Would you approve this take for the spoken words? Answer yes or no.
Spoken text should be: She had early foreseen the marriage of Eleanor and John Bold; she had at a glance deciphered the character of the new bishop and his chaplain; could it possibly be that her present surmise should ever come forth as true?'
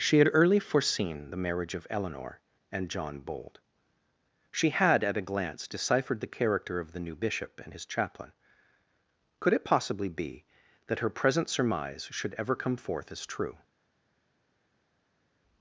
yes